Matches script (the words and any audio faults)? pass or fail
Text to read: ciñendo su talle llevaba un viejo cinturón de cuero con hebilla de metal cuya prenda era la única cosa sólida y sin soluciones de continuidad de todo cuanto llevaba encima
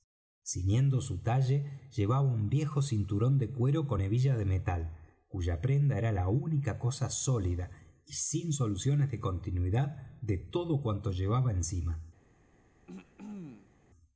fail